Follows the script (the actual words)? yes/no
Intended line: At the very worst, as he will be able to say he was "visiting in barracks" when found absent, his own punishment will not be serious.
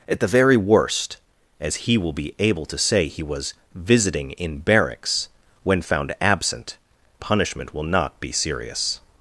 no